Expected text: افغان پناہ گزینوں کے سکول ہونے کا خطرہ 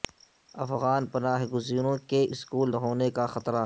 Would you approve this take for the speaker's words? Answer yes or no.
yes